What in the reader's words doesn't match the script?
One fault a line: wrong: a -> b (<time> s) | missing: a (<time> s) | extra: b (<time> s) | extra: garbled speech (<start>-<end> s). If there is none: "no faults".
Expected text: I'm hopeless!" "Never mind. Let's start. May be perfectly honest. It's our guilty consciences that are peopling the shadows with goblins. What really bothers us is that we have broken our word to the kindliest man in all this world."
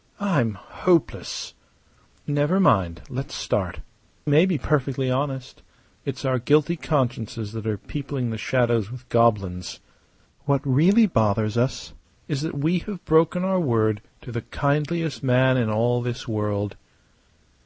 no faults